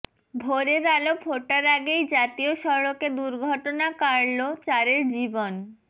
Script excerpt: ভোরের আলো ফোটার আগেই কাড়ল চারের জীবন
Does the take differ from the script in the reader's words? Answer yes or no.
yes